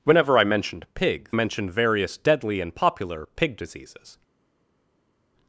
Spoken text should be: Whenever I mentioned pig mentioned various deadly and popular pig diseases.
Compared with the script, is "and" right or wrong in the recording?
right